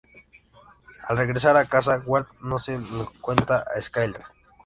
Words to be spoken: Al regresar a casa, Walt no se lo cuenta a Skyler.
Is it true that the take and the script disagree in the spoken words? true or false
false